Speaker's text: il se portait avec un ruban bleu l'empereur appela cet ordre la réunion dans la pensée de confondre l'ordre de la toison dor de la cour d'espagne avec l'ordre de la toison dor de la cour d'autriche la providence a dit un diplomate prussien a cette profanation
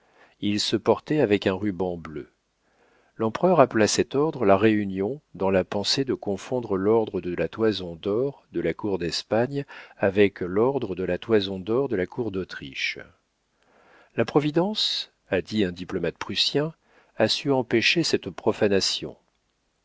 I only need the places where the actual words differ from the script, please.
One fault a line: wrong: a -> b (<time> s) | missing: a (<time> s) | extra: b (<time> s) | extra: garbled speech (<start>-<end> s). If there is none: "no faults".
extra: su empêcher (17.3 s)